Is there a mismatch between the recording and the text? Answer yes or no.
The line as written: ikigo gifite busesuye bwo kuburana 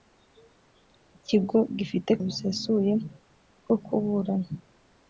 no